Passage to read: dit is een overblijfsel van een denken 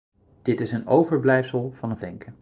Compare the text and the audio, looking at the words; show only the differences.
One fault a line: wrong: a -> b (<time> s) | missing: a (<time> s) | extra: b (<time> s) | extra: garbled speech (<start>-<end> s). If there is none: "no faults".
no faults